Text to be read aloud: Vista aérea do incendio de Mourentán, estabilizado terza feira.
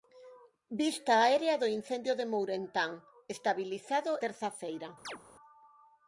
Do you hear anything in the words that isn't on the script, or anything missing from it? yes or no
no